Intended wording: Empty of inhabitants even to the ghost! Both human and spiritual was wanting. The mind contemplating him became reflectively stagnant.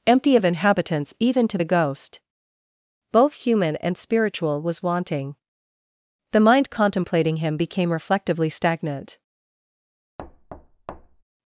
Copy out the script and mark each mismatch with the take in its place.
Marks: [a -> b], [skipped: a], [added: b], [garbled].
Empty of inhabitants even to the ghost! Both human and spiritual was wanting. The mind contemplating him became reflectively stagnant.